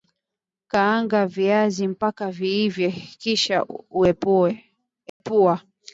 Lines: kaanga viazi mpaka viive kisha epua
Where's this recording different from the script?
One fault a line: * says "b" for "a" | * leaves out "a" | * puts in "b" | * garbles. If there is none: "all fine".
all fine